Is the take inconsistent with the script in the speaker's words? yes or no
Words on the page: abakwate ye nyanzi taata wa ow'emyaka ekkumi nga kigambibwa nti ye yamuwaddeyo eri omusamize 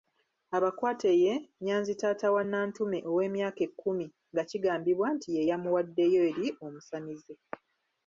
yes